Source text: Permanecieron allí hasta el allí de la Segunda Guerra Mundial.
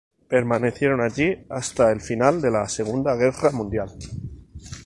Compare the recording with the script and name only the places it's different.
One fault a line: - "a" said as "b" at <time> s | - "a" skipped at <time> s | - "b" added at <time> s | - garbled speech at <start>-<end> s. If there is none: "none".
- "allí" said as "final" at 2.0 s